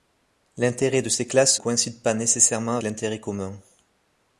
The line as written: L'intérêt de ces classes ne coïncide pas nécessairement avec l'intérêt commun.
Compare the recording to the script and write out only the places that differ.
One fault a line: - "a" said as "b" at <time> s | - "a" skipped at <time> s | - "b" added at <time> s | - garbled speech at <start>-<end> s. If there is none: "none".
- "ne" skipped at 1.6 s
- "avec" skipped at 2.8 s